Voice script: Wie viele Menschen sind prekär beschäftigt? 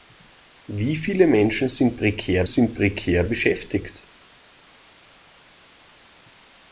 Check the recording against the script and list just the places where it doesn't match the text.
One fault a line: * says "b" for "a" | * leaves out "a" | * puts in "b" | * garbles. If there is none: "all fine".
* puts in "sind prekär"